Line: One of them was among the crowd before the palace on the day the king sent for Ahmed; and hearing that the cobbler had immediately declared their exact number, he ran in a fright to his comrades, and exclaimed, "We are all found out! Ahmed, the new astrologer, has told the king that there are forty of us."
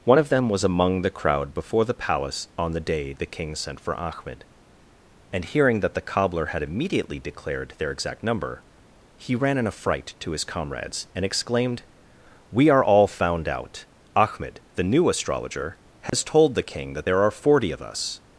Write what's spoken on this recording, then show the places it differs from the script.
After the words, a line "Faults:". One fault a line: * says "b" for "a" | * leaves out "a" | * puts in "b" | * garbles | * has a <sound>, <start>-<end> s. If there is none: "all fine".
One of them was among the crowd before the palace on the day the king sent for Ahmed; and hearing that the cobbler had immediately declared their exact number, he ran in a fright to his comrades, and exclaimed, "We are all found out! Ahmed, the new astrologer, has told the king that there are forty of us."
Faults:
* has a dropout, 16.1-16.1 s